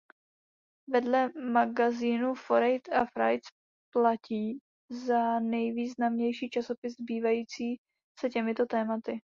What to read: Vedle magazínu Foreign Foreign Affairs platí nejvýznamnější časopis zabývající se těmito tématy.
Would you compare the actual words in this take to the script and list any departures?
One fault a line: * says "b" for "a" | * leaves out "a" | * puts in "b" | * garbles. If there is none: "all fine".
* leaves out "Foreign"
* puts in "za"